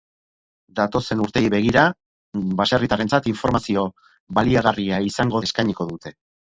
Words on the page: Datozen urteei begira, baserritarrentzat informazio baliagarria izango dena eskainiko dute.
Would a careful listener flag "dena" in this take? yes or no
yes